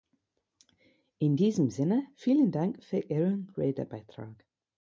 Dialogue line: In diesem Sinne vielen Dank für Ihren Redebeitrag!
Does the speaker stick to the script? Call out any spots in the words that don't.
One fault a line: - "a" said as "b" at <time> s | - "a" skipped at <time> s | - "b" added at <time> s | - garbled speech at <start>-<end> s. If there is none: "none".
none